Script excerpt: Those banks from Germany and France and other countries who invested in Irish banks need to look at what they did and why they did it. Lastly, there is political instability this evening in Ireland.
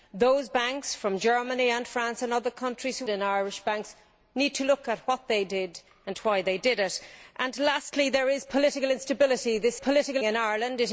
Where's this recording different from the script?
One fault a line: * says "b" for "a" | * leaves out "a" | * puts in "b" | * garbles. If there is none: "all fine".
* leaves out "invested"
* says "political" for "evening"